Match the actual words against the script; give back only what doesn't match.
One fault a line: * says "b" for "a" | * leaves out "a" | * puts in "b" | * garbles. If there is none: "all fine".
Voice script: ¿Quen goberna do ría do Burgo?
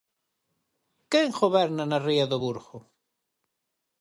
* says "na" for "do"